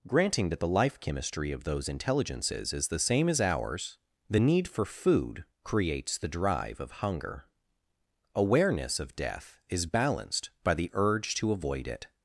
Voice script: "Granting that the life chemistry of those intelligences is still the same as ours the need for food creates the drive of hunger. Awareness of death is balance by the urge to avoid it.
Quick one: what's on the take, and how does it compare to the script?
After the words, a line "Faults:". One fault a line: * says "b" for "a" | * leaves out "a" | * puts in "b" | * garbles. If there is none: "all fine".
"Granting that the life chemistry of those intelligences is the same as ours the need for food creates the drive of hunger. Awareness of death is balanced by the urge to avoid it.
Faults:
* leaves out "still"
* says "balanced" for "balance"